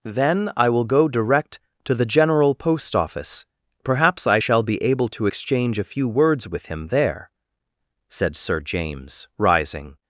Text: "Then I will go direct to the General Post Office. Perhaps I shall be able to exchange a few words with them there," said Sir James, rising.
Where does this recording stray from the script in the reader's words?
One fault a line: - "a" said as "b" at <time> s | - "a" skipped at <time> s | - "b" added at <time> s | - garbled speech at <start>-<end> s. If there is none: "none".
- "them" said as "him" at 6.7 s